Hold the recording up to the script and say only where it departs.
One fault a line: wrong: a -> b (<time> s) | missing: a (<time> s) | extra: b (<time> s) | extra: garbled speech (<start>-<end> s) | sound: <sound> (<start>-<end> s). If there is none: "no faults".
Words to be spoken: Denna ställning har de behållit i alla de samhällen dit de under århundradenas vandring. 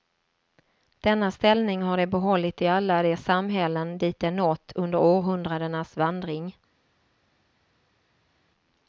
extra: nått (4.3 s)